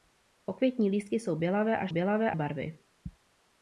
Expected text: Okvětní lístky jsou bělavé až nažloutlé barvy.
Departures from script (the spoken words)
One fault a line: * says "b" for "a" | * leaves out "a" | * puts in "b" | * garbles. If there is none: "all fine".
* says "bělavé" for "nažloutlé"